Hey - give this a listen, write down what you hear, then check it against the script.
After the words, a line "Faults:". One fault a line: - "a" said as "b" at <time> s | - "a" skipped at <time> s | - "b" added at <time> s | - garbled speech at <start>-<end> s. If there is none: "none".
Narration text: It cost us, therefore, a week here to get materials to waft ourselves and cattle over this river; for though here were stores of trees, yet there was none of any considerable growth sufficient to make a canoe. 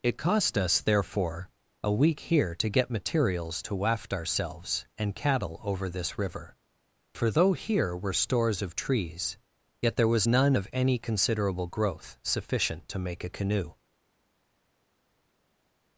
It cost us, therefore, a week here to get materials to waft ourselves and cattle over this river; for though here were stores of trees, yet there was none of any considerable growth sufficient to make a canoe.
Faults:
none